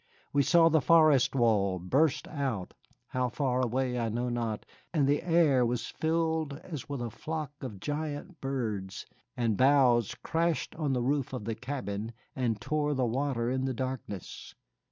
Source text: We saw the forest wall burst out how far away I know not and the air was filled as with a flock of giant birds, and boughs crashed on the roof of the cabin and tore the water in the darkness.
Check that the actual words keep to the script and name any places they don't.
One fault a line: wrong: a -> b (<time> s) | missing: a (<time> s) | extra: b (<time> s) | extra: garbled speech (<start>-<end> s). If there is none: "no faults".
no faults